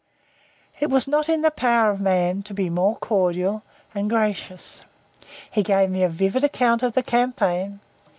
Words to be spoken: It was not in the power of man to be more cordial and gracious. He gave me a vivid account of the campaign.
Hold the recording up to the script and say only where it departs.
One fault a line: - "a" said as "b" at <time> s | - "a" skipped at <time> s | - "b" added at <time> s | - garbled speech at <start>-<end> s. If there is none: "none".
none